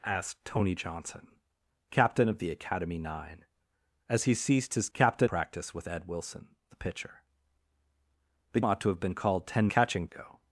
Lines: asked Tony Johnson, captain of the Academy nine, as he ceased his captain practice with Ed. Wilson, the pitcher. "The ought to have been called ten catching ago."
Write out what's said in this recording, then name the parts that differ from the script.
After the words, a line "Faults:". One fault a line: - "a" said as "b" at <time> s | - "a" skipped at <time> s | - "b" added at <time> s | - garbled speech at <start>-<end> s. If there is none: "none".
asked Tony Johnson, captain of the Academy nine, as he ceased his captain practice with Ed. Wilson, the pitcher. "The ought to have been called ten catching ago."
Faults:
none